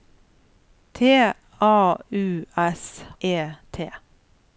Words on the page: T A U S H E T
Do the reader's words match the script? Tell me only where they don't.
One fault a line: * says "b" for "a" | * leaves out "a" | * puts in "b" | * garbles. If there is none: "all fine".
* leaves out "H"